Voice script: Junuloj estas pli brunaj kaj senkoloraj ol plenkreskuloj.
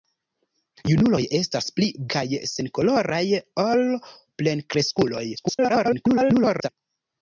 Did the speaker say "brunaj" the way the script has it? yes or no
no